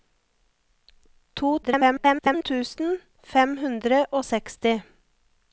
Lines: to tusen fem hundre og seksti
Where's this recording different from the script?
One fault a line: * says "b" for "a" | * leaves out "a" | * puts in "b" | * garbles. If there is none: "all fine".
* garbles